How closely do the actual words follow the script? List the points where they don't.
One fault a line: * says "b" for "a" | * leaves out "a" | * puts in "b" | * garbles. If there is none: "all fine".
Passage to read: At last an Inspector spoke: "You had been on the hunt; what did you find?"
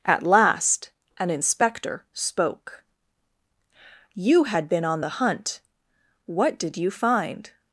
all fine